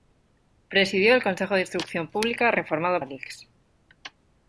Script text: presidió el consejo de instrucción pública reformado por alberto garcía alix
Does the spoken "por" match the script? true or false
false